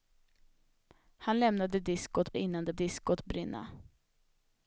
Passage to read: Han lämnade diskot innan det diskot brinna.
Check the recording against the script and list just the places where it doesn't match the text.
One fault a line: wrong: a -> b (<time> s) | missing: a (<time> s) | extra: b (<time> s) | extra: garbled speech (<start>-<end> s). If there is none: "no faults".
no faults